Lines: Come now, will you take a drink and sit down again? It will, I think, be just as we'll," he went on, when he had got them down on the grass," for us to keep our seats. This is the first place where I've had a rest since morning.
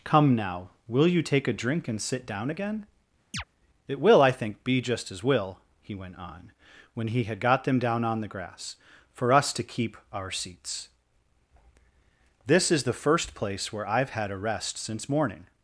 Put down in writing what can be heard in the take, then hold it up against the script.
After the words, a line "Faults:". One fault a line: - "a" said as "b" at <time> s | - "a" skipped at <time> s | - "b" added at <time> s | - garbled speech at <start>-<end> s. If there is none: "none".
Come now, will you take a drink and sit down again? It will, I think, be just as we'll," he went on, when he had got them down on the grass," for us to keep our seats. This is the first place where I've had a rest since morning.
Faults:
none